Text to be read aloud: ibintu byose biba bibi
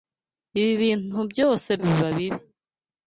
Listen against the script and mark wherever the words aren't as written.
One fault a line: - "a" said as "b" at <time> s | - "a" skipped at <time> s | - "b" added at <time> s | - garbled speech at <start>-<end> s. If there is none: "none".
none